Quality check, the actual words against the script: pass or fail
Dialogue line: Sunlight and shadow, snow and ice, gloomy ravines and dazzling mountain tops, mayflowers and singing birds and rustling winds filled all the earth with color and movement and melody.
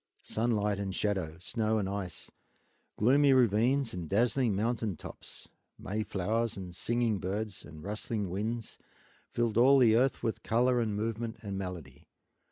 pass